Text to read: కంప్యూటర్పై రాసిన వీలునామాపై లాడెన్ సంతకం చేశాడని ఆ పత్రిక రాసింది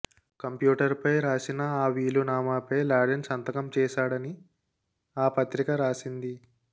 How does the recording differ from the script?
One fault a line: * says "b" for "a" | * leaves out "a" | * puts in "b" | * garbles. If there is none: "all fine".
* puts in "ఆ"